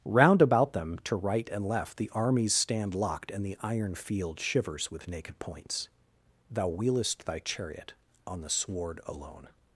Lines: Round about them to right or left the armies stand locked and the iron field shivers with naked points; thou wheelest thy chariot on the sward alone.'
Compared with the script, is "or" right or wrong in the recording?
wrong